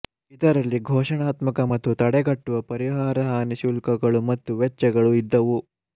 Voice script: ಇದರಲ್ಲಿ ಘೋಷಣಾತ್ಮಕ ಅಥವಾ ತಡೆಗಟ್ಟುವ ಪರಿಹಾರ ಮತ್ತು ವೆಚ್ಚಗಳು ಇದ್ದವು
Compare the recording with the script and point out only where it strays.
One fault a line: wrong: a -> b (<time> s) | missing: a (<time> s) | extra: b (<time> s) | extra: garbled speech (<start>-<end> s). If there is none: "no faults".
wrong: ಅಥವಾ -> ಮತ್ತು (1.7 s)
extra: ಹಾನಿ ಶುಲ್ಕಗಳು (3.3 s)